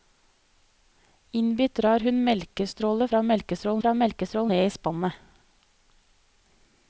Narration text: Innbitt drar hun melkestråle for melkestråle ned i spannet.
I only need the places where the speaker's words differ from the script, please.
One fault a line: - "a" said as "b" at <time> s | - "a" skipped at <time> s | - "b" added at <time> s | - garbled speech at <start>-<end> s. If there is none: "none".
- "for melkestråle" added at 3.8 s